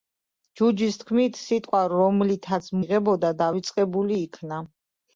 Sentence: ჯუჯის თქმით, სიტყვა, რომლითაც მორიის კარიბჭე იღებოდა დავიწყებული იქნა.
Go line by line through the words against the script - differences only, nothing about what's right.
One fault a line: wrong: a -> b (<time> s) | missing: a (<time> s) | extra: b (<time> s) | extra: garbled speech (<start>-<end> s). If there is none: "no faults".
missing: მორიის კარიბჭე (2.7 s)